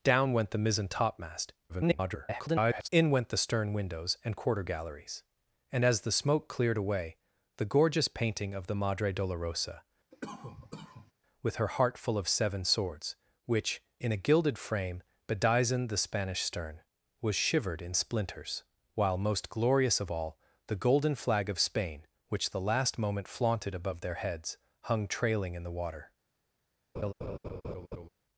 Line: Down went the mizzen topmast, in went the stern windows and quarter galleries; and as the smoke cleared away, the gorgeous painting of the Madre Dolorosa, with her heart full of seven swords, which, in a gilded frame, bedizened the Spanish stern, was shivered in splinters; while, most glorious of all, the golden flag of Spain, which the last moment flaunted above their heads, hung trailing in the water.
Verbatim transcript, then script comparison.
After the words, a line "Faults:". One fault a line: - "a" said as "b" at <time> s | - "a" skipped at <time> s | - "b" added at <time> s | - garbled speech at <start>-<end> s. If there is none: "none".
Down went the mizzen topmast, [garbled] in went the stern windows and quarter galleries; and as the smoke cleared away, the gorgeous painting of the Madre Dolorosa, with her heart full of seven swords, which, in a gilded frame, bedizened the Spanish stern, was shivered in splinters; while, most glorious of all, the golden flag of Spain, which the last moment flaunted above their heads, hung trailing in the water.
Faults:
- garbled speech at 1.7-2.9 s